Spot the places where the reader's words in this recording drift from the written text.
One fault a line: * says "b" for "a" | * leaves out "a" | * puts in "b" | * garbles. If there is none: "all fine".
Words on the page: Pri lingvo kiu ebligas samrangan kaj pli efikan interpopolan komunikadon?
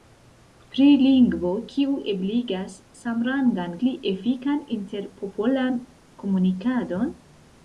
* leaves out "kaj"